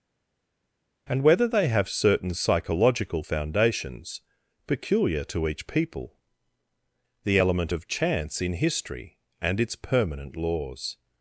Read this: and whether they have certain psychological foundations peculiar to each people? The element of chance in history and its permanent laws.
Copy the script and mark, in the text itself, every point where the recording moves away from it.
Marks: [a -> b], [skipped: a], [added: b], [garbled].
and whether they have certain psychological foundations peculiar to each people? The element of chance in history and its permanent laws.